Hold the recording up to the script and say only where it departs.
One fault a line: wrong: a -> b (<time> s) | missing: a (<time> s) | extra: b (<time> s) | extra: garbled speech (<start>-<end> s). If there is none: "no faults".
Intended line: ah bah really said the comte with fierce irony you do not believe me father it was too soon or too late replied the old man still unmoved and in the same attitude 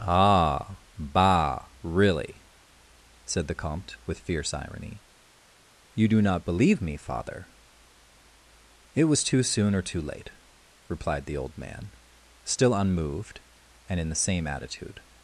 no faults